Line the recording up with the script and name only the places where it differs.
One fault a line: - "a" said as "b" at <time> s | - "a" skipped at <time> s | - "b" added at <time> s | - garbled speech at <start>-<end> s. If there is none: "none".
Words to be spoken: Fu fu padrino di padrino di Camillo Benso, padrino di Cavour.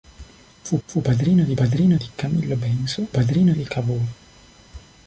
none